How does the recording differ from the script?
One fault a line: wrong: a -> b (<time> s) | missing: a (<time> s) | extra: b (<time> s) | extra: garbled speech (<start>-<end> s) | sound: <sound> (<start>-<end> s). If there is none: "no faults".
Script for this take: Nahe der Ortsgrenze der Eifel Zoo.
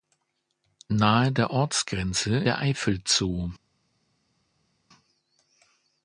no faults